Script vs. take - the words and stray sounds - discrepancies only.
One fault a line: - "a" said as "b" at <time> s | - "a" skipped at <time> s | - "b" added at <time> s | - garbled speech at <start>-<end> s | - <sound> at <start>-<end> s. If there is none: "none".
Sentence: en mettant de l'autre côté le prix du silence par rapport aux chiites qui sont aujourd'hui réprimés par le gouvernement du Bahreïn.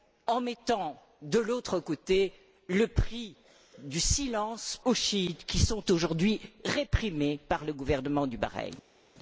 - "par rapport" skipped at 4.8 s